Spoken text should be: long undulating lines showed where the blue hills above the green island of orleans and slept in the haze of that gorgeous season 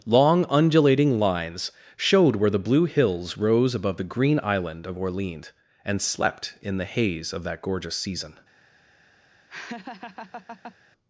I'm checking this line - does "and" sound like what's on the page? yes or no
yes